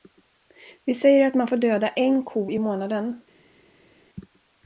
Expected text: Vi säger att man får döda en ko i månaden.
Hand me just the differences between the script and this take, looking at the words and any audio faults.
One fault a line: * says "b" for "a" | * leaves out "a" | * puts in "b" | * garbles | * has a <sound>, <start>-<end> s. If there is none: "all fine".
all fine